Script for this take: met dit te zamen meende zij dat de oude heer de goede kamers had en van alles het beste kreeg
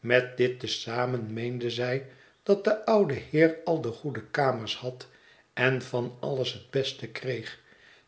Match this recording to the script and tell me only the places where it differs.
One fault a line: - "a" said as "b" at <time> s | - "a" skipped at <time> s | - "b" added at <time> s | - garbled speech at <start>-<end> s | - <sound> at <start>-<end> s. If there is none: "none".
- "al" added at 3.6 s